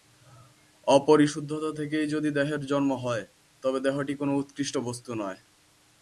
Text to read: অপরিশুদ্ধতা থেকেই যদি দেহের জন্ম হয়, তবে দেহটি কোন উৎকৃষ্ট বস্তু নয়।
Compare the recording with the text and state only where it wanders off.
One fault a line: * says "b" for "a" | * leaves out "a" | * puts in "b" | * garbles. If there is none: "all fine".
all fine